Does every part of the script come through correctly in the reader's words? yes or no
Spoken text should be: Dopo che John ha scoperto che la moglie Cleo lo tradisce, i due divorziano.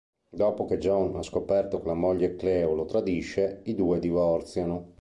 yes